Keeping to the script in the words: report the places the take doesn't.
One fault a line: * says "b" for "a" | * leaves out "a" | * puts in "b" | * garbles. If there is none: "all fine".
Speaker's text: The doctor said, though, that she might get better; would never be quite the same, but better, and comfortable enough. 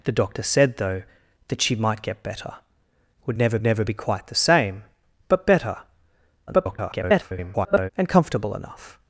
* puts in "never"
* garbles